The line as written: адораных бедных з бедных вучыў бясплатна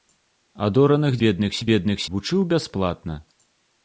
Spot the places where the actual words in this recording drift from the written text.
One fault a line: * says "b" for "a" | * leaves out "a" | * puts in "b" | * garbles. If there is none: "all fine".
all fine